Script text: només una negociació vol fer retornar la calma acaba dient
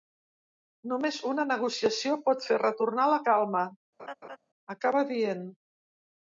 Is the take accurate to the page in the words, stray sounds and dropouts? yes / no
no